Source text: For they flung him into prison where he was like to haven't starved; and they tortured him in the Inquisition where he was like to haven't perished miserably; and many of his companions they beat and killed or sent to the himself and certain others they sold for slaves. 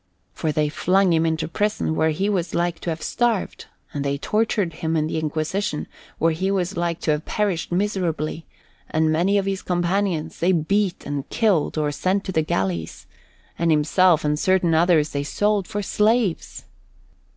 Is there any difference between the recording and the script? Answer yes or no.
yes